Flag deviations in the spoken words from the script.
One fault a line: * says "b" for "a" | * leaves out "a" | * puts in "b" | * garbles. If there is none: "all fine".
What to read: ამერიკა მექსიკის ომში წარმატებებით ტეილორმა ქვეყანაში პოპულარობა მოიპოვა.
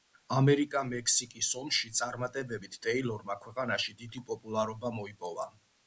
* puts in "დიდი"